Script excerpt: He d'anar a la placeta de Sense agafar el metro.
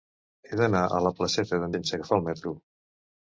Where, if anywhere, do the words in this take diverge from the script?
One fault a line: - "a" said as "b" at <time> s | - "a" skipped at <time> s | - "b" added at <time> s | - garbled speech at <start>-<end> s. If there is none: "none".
none